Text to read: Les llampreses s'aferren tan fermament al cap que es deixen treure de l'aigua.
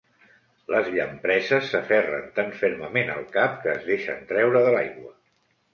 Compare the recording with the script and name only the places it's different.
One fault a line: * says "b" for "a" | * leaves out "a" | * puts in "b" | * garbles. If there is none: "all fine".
all fine